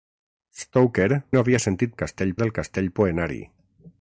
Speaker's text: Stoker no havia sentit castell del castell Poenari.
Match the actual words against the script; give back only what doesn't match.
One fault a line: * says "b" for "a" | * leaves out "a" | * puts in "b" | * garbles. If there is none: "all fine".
all fine